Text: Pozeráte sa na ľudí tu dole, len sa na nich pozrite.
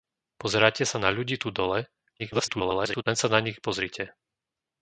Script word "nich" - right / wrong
right